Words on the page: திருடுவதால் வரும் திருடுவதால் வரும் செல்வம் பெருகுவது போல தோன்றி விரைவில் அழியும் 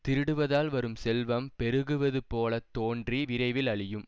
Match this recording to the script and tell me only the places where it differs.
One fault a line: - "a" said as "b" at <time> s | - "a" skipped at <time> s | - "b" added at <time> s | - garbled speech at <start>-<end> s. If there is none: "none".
- "திருடுவதால் வரும்" skipped at 0.9 s